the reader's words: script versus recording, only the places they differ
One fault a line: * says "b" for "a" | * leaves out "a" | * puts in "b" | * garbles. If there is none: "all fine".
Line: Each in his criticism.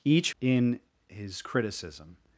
all fine